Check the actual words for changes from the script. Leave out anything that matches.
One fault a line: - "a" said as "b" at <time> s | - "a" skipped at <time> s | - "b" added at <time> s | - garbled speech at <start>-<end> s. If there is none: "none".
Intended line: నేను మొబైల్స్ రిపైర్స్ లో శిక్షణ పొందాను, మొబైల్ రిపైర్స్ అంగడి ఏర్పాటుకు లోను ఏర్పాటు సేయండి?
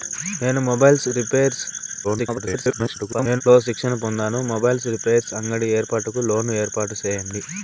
- garbled speech at 2.0-3.4 s